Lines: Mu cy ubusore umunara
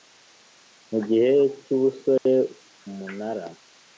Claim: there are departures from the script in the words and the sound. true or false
true